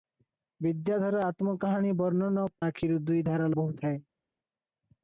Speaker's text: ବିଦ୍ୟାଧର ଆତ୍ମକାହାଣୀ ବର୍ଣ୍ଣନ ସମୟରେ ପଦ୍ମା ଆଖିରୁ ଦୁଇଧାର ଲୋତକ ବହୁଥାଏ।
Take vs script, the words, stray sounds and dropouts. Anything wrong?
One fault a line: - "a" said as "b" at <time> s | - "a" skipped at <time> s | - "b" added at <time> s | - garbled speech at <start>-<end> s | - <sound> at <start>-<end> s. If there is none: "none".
- "ସମୟରେ ପଦ୍ମା" skipped at 2.5 s
- "ଲୋତକ" skipped at 3.5 s